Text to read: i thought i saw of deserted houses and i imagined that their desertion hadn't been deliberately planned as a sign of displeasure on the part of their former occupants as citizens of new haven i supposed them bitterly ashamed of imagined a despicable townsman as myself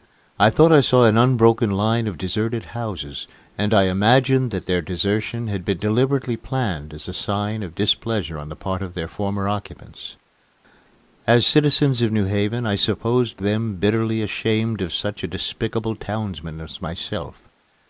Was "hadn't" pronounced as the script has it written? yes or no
no